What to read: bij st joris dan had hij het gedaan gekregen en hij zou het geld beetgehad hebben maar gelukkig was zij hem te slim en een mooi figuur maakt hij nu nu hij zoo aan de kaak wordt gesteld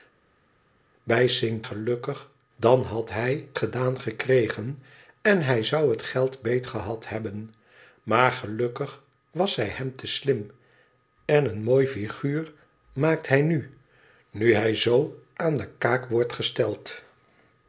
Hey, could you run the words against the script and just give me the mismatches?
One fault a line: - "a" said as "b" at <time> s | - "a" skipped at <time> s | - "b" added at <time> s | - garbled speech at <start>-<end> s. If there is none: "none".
- "joris" said as "gelukkig" at 1.6 s
- "het" skipped at 3.5 s